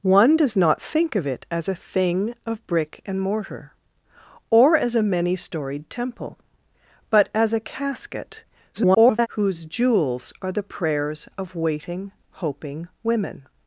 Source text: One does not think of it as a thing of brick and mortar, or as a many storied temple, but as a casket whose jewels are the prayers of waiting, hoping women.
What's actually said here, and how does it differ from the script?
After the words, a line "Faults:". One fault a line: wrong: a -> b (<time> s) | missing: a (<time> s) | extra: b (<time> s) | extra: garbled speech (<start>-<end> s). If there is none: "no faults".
One does not think of it as a thing of brick and mortar, or as a many storied temple, but as a casket [garbled] whose jewels are the prayers of waiting, hoping women.
Faults:
extra: garbled speech (8.7-9.3 s)